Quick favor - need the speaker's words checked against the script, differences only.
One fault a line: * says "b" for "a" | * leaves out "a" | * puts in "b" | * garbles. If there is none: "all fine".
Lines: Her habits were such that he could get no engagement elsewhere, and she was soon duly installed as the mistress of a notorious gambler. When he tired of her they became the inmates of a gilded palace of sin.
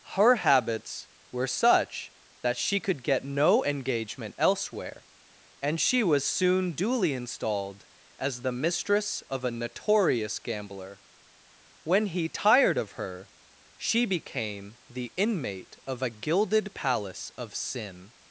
* says "she" for "he"
* says "she" for "they"
* says "inmate" for "inmates"